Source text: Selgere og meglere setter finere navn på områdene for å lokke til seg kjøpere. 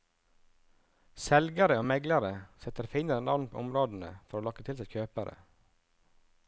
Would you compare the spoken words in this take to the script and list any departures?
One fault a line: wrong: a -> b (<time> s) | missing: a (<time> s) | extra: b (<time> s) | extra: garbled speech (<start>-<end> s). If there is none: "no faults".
no faults